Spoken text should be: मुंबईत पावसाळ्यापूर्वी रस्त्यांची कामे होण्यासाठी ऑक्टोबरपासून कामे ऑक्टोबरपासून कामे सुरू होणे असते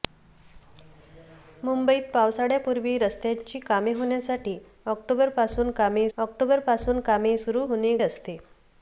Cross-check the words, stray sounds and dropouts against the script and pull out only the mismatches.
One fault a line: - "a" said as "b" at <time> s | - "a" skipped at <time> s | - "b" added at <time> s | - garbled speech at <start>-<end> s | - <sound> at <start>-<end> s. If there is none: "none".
none